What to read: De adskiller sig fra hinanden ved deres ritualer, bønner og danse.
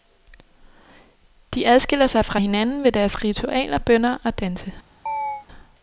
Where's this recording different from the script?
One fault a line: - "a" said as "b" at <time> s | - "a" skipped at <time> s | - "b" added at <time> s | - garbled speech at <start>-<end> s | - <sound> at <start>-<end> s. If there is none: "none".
- chirp at 5.1-5.5 s